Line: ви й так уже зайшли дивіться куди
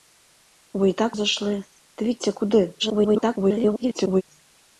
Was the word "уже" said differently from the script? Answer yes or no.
yes